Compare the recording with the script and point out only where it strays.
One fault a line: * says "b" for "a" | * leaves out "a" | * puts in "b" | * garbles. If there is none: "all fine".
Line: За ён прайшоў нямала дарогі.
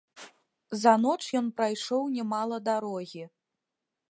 * puts in "ноч"